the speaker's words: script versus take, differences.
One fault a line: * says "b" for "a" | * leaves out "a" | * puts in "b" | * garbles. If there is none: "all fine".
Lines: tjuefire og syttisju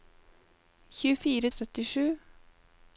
all fine